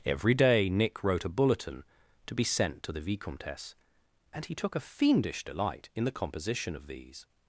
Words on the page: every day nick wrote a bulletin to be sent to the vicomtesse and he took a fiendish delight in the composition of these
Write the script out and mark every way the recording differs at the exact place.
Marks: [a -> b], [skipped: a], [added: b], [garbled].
every day nick wrote a bulletin to be sent to the vicomtesse and he took a fiendish delight in the composition of these